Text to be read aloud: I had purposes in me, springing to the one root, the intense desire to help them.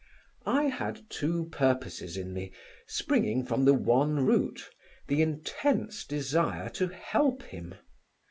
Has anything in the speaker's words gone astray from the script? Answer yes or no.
yes